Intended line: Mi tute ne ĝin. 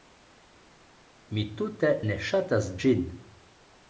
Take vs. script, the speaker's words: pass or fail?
fail